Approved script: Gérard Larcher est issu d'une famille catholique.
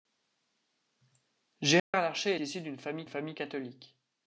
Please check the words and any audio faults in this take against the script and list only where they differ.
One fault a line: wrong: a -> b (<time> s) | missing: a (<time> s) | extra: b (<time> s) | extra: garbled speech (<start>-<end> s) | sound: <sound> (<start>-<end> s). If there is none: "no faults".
sound: dropout (1.8-1.9 s)
missing: est (2.4 s)
extra: famille (3.1 s)